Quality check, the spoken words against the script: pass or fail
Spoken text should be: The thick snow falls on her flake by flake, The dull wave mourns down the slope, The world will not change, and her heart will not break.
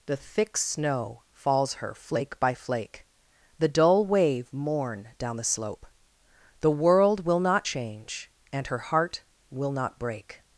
fail